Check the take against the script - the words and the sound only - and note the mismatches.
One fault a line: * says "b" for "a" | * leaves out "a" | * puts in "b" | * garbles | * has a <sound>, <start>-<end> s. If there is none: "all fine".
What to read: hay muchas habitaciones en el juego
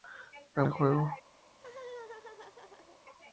* leaves out "muchas habitaciones en"
* has a laugh, 1.5-3.0 s